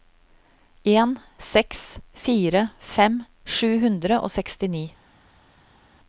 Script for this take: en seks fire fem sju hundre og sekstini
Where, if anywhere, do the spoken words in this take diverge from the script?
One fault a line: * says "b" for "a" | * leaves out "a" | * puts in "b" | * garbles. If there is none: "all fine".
all fine